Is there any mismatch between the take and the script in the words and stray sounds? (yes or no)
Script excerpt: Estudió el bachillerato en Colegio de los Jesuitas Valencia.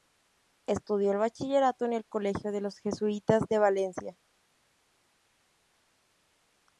yes